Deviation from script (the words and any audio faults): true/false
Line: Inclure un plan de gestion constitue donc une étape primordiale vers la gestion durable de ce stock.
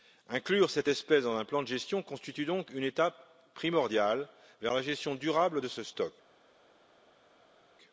true